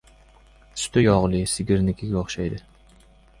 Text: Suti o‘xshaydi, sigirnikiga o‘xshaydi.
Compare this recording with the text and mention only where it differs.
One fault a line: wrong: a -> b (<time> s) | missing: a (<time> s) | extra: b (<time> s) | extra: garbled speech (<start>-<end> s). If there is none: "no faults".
wrong: o‘xshaydi -> yog‘li (1.0 s)